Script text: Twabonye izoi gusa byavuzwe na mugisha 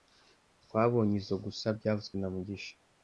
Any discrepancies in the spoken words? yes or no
no